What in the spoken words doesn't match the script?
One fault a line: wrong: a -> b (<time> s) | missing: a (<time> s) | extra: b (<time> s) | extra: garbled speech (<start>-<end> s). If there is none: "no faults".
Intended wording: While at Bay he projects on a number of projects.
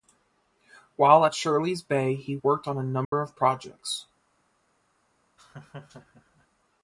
extra: Shirley's (1.3 s)
wrong: projects -> worked (2.3 s)